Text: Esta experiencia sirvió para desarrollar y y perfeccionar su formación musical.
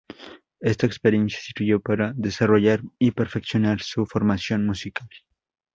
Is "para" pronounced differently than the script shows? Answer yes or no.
no